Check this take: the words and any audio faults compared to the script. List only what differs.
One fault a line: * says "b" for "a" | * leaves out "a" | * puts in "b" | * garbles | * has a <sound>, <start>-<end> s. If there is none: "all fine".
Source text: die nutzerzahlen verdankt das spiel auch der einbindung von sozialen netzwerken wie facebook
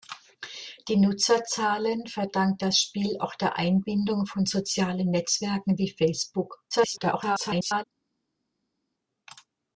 * garbles